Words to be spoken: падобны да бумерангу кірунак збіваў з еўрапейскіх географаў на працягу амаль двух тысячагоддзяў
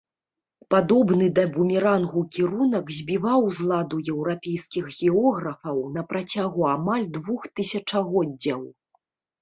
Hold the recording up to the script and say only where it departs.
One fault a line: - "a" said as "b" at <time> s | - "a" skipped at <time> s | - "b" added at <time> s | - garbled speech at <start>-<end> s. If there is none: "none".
- "ладу" added at 3.7 s